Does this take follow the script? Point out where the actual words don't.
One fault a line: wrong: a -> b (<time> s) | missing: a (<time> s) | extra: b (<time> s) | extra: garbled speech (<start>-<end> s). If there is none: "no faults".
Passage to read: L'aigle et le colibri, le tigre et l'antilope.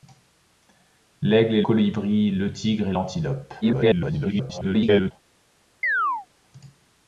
missing: le (1.6 s)
extra: garbled speech (3.6-5.1 s)